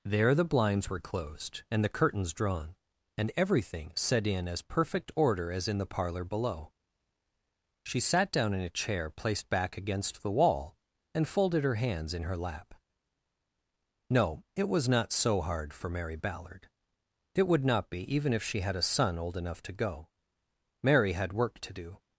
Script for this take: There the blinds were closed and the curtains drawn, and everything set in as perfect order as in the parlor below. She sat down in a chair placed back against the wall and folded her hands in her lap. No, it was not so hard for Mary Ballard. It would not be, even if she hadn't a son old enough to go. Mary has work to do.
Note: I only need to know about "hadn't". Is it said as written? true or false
false